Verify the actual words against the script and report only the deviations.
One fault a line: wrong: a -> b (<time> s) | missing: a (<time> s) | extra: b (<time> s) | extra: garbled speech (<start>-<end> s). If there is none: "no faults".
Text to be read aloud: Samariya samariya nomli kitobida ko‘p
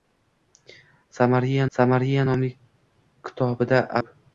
no faults